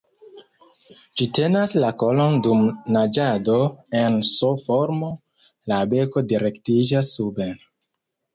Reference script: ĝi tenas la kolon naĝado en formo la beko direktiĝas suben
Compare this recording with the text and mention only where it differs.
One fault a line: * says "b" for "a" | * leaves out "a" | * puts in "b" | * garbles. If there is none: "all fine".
* puts in "dum"
* puts in "s"